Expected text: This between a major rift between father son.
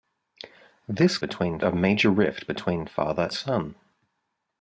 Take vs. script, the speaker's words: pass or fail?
pass